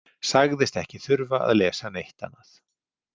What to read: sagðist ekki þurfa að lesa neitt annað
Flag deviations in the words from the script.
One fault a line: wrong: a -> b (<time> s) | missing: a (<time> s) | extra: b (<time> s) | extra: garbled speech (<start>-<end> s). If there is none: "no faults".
no faults